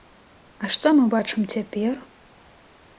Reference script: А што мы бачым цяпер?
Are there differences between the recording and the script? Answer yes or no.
no